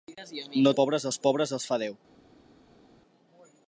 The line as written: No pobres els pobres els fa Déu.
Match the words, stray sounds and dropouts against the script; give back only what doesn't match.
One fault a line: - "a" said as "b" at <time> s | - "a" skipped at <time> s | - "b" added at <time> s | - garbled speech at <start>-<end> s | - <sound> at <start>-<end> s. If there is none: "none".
none